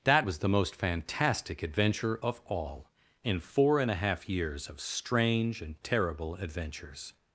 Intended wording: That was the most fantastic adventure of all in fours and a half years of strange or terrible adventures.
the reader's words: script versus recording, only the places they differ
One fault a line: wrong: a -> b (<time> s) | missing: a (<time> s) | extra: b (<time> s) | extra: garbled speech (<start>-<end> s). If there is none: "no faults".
wrong: fours -> four (3.4 s)
wrong: or -> and (5.6 s)